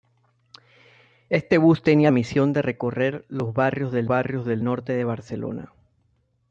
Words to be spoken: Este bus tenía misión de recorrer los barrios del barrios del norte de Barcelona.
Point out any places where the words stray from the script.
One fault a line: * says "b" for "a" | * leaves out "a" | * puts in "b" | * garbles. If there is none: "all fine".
all fine